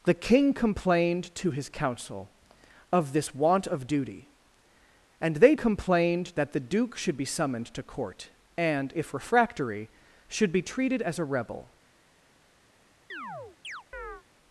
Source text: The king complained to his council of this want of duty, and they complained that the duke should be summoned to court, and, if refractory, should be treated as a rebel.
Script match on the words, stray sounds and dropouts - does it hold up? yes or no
no